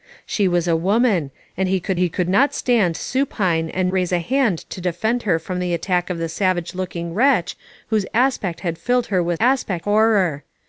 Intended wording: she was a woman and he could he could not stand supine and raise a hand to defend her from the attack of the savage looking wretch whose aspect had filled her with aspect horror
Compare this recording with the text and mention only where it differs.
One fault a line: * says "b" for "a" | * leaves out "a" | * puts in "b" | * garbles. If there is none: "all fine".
all fine